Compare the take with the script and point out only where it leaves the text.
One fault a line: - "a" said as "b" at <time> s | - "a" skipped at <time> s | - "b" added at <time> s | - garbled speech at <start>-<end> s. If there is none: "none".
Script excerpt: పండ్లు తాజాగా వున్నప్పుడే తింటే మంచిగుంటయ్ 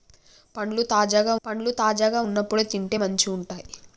- "పండ్లు తాజాగా" added at 1.4 s